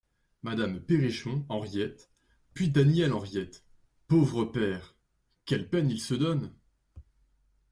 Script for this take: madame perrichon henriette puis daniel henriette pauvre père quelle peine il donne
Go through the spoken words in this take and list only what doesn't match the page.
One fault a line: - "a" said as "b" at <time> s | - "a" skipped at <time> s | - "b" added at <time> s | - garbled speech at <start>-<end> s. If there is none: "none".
- "se" added at 6.0 s